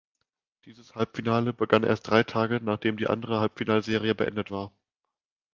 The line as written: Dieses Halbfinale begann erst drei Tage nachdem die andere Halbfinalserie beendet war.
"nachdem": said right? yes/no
yes